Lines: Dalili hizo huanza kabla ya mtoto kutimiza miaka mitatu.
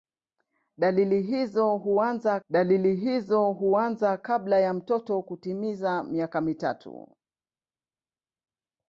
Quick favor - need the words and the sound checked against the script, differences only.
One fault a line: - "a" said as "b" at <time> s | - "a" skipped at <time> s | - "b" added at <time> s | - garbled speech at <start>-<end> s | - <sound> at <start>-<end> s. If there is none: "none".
- "dalili hizo huanza" added at 2.5 s